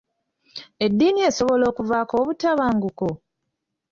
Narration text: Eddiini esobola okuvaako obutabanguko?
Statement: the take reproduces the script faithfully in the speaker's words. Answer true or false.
true